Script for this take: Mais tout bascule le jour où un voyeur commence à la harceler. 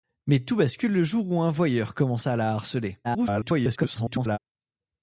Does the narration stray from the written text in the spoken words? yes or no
yes